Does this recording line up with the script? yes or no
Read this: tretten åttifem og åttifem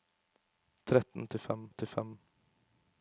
yes